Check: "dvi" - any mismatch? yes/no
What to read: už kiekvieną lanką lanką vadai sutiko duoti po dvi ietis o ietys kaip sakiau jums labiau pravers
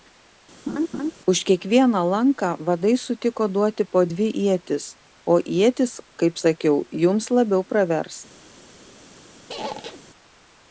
no